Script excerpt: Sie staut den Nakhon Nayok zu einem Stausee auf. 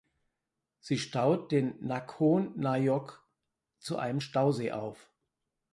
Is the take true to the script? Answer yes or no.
yes